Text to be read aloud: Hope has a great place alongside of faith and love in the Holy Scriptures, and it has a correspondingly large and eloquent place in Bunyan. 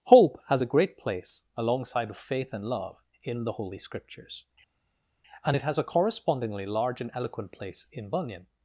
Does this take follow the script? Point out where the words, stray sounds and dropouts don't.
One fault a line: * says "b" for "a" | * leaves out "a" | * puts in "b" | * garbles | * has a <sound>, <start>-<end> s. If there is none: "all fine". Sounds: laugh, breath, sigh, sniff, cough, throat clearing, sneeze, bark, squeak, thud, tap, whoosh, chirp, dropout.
all fine